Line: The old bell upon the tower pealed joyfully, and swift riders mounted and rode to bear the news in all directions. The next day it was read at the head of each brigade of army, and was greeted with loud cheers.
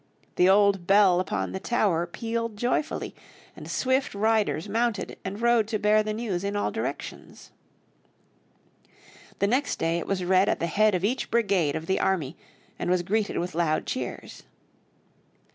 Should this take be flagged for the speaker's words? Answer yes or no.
yes